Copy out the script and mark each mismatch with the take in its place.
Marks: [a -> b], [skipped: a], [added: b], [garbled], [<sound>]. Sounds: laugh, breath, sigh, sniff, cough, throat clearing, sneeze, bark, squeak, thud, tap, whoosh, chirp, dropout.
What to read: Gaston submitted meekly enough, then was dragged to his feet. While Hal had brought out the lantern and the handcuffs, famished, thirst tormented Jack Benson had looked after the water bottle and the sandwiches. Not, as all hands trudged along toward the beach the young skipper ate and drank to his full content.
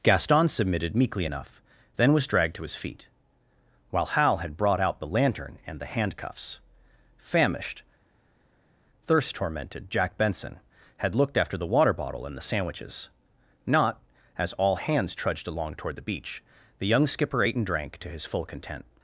Gaston submitted meekly enough, then was dragged to his feet. While Hal had brought out the lantern and the handcuffs, famished, thirst tormented Jack Benson had looked after the water bottle and the sandwiches. Not, as all hands trudged along toward the beach the young skipper ate and drank to his full content.